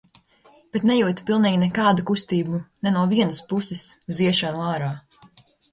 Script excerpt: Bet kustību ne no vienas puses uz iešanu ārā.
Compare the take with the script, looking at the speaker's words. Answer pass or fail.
fail